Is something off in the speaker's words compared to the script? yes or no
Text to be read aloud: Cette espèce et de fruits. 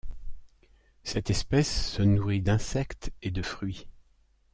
yes